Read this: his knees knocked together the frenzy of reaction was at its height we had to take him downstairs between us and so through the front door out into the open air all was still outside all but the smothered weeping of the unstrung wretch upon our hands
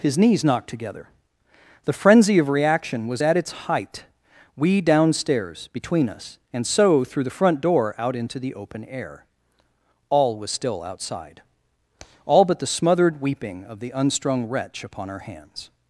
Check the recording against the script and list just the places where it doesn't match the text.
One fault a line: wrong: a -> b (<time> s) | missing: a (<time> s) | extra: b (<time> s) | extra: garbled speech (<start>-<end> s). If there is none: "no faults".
missing: had to take him (4.8 s)